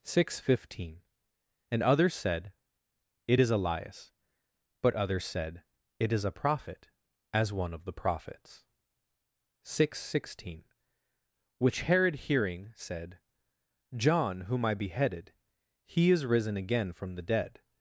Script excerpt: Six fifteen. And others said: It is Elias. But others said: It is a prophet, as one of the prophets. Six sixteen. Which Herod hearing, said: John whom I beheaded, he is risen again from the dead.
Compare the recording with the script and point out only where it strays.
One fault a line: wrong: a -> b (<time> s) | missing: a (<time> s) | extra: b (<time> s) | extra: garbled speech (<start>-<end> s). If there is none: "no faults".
no faults